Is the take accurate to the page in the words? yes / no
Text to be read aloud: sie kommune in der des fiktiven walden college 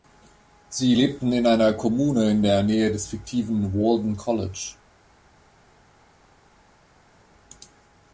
no